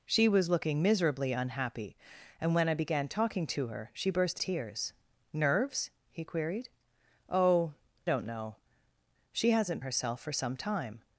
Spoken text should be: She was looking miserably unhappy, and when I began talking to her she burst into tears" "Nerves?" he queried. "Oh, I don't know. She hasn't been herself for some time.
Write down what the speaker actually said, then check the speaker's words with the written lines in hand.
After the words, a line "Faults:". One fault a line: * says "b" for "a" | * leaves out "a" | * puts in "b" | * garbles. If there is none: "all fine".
She was looking miserably unhappy, and when I began talking to her she burst tears" "Nerves?" he queried. "Oh, don't know. She hasn't herself for some time.
Faults:
* leaves out "into"
* leaves out "I"
* leaves out "been"